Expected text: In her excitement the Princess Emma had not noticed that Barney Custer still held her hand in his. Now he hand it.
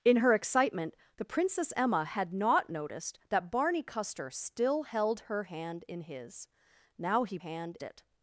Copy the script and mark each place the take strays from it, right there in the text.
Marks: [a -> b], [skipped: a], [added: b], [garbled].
In her excitement the Princess Emma had not noticed that Barney Custer still held her hand in his. Now he hand it.